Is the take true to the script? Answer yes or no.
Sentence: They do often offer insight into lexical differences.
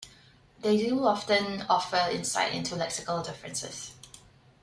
yes